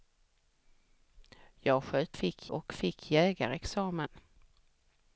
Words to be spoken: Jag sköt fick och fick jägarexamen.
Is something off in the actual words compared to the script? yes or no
no